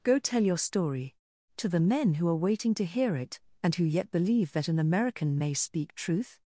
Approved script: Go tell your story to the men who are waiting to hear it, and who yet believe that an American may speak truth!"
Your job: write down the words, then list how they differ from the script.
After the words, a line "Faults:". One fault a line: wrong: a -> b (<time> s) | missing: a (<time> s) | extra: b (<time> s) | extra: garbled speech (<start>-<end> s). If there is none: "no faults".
Go tell your story to the men who are waiting to hear it, and who yet believe that an American may speak truth!"
Faults:
no faults